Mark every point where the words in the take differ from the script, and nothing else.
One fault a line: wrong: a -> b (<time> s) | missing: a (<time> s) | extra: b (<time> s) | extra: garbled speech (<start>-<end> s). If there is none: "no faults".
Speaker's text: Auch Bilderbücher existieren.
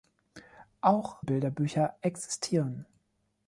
no faults